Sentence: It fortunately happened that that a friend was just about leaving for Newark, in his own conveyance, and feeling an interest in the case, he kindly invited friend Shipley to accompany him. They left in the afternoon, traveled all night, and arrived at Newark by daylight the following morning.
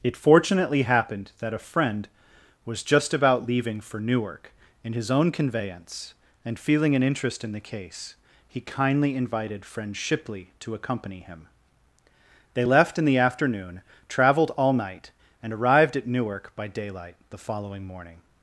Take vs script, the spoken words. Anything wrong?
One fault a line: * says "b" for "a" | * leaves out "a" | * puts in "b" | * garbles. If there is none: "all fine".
* leaves out "that"